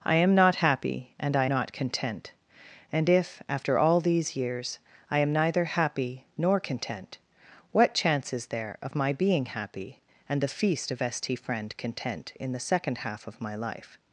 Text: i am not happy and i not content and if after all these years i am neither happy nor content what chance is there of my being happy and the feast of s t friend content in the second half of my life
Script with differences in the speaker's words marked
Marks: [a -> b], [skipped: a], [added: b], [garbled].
i am not happy and i not content and if after all these years i am neither happy nor content what chance is there of my being happy and the feast of s t friend content in the second half of my life